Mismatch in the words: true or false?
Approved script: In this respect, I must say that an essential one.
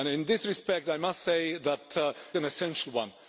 false